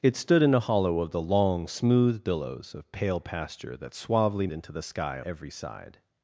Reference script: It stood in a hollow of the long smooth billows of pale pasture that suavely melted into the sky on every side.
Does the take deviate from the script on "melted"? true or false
true